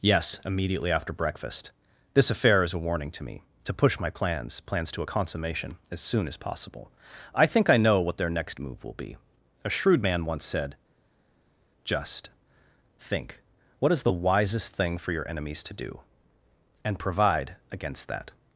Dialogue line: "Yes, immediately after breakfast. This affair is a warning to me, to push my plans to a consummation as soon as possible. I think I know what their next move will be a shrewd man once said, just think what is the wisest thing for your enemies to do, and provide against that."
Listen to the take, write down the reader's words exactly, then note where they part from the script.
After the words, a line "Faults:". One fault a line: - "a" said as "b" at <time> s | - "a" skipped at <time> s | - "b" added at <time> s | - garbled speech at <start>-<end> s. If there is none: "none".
"Yes, immediately after breakfast. This affair is a warning to me, to push my plans plans to a consummation as soon as possible. I think I know what their next move will be a shrewd man once said, just think what is the wisest thing for your enemies to do, and provide against that."
Faults:
- "plans" added at 4.6 s